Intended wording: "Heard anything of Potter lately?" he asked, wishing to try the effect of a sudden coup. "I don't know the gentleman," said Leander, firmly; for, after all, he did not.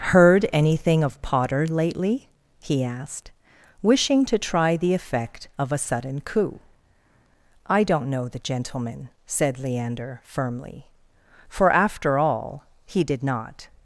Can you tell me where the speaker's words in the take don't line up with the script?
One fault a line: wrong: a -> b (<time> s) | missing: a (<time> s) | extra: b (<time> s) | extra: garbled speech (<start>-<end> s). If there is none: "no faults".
no faults